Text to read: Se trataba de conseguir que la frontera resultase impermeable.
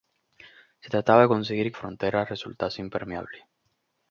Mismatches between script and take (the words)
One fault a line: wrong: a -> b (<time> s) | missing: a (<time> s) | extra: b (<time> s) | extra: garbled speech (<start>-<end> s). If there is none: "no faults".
missing: la (1.8 s)